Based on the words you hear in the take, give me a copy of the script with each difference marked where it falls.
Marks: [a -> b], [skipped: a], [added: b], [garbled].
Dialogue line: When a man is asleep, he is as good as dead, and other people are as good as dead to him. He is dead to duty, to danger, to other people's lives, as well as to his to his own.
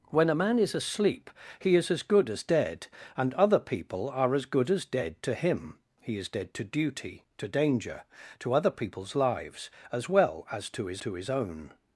When a man is asleep, he is as good as dead, and other people are as good as dead to him. He is dead to duty, to danger, to other people's lives, as well as to his to his own.